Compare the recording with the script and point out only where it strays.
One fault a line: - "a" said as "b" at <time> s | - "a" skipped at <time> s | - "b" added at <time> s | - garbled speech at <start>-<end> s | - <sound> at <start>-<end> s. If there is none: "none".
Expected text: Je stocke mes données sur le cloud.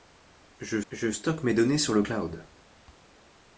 - "je" added at 0.9 s